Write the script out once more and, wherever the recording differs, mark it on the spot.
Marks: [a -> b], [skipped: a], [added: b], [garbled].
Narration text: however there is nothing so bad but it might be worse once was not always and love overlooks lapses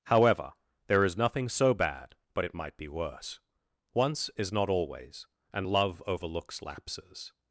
however there is nothing so bad but it might be worse once [was -> is] not always and love overlooks lapses